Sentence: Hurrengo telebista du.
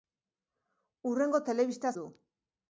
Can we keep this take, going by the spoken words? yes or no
yes